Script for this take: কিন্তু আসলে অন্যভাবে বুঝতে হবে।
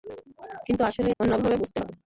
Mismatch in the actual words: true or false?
false